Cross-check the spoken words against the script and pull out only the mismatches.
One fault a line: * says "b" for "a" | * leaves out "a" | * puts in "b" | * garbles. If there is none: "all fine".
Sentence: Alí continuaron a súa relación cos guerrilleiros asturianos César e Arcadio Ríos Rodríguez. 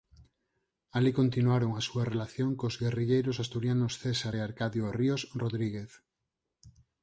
all fine